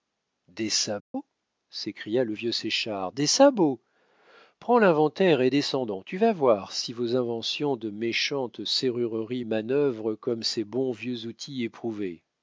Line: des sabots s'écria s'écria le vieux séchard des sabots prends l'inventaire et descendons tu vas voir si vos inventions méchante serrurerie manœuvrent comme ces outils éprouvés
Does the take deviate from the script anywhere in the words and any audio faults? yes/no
yes